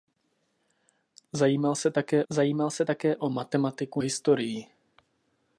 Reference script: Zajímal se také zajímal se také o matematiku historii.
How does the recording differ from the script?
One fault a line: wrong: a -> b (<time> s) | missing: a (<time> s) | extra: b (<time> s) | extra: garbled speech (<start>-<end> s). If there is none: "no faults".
no faults